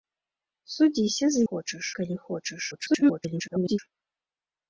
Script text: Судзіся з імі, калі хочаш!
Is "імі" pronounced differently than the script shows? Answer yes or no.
yes